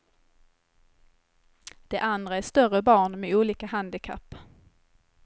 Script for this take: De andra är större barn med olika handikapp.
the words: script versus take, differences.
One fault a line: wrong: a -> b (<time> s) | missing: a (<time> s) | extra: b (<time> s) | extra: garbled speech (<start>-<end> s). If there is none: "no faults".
no faults